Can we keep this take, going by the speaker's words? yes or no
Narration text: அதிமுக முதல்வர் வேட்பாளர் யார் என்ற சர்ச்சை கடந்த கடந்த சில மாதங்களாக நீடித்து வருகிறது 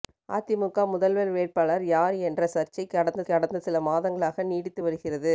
yes